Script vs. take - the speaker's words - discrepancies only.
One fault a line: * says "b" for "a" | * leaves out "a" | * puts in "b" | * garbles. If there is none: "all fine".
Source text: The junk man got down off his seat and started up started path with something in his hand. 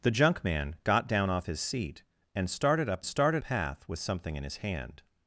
all fine